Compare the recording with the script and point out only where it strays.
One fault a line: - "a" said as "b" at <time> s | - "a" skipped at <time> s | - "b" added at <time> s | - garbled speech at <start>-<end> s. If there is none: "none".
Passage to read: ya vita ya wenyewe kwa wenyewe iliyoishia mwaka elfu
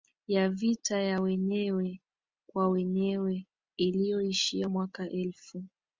none